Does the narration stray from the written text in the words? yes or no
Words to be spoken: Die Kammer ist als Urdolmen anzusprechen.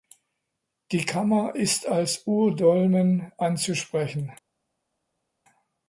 no